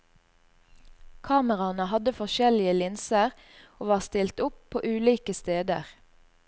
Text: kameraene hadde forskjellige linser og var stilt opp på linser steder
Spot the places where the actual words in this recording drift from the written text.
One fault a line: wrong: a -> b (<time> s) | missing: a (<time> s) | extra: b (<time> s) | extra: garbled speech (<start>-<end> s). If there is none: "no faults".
wrong: linser -> ulike (4.9 s)